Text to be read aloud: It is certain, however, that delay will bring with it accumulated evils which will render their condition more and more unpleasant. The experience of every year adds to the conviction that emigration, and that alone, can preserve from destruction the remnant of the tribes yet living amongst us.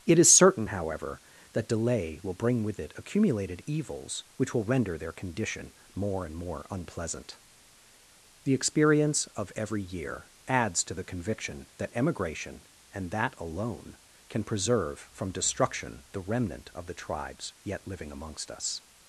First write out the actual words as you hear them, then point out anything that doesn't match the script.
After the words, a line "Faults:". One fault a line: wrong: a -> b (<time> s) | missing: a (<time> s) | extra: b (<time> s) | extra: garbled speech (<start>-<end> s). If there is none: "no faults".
It is certain, however, that delay will bring with it accumulated evils which will render their condition more and more unpleasant. The experience of every year adds to the conviction that emigration, and that alone, can preserve from destruction the remnant of the tribes yet living amongst us.
Faults:
no faults